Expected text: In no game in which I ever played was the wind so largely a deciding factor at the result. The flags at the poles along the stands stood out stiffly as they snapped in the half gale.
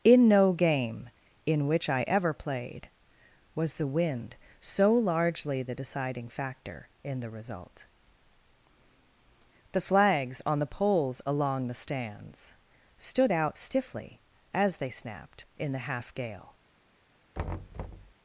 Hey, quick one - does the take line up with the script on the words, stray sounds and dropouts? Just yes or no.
no